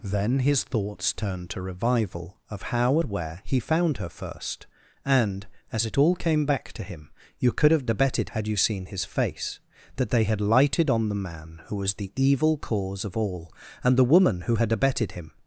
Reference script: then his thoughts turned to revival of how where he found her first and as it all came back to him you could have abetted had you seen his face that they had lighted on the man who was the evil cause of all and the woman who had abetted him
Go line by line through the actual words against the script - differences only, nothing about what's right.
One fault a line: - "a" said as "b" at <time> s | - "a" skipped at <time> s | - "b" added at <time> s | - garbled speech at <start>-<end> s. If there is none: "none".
none